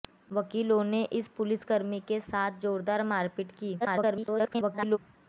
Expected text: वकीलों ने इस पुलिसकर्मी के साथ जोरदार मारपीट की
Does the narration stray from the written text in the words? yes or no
yes